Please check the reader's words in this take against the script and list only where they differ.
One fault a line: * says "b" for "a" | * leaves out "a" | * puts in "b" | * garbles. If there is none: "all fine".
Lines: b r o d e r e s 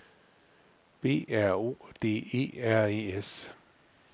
all fine